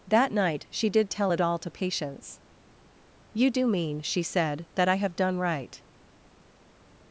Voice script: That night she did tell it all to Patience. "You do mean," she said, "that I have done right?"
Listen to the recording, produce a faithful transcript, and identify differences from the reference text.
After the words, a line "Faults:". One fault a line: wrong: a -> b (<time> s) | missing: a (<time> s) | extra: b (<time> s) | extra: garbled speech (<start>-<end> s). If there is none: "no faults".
That night she did tell it all to Patience. "You do mean," she said, "that I have done right?"
Faults:
no faults